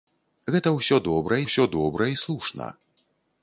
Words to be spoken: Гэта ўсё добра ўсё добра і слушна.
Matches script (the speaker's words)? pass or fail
pass